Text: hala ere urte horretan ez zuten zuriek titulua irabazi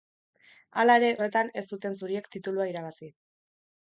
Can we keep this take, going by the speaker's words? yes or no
no